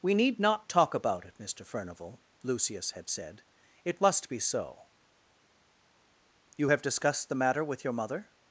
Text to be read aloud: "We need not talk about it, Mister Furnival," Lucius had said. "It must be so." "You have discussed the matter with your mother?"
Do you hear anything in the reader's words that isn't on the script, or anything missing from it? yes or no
no